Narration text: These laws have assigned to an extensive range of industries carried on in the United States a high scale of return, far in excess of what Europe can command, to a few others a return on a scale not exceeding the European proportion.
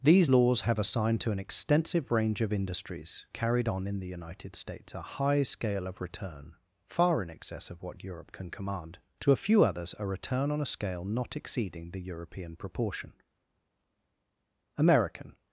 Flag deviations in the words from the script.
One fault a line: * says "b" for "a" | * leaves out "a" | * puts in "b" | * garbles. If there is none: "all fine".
* puts in "American"